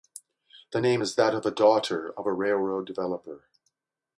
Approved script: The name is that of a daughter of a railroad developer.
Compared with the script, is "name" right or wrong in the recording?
right